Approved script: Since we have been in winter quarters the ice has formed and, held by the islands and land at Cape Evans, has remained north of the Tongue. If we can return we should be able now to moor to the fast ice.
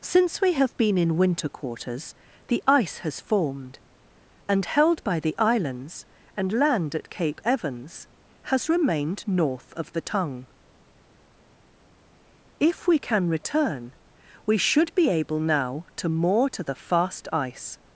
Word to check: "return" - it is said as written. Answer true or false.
true